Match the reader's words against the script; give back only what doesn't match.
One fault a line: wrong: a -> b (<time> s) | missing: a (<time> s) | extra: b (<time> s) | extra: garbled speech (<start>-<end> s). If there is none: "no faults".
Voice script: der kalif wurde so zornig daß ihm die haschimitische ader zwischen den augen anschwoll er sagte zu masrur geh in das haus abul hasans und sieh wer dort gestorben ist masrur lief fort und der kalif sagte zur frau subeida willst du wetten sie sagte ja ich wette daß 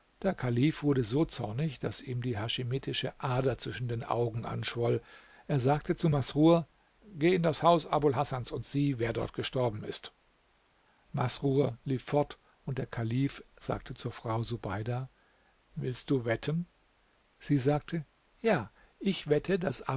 no faults